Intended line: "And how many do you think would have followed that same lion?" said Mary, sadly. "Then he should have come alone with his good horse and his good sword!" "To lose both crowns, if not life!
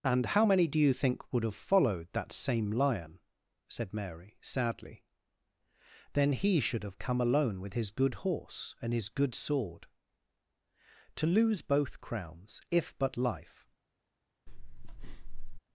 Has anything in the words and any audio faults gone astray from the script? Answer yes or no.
yes